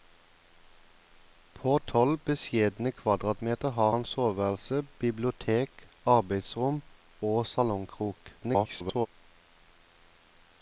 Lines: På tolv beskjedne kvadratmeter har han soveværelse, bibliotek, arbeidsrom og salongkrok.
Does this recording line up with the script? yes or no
no